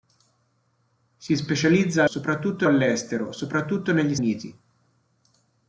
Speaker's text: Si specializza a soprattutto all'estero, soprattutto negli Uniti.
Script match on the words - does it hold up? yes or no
yes